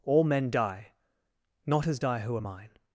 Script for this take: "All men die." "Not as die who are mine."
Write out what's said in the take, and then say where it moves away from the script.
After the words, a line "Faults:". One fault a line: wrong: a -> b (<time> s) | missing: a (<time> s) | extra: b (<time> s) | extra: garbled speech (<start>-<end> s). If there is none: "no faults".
"All men die." "Not as die who are mine."
Faults:
no faults